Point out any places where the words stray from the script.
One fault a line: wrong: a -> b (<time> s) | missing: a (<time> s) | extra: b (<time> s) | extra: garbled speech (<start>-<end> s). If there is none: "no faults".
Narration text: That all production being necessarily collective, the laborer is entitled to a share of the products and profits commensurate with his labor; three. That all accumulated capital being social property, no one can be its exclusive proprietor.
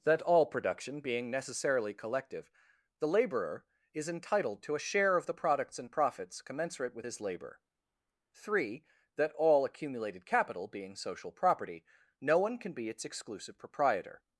no faults